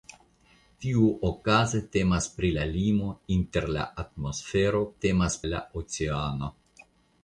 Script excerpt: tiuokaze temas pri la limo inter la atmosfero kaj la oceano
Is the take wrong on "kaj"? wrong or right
wrong